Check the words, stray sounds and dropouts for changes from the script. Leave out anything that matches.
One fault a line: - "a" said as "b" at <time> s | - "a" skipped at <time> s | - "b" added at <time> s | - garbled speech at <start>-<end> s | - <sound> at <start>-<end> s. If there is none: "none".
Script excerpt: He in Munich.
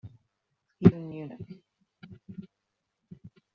none